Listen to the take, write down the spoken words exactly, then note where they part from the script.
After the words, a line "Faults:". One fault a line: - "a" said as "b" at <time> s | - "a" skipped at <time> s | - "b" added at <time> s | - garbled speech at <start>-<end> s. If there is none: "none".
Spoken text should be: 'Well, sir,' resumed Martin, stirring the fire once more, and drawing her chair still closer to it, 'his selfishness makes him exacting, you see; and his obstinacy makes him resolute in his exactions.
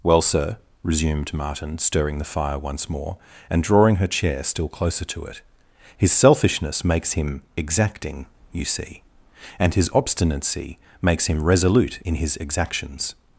'Well, sir,' resumed Martin, stirring the fire once more, and drawing her chair still closer to it, 'his selfishness makes him exacting, you see; and his obstinacy makes him resolute in his exactions.
Faults:
none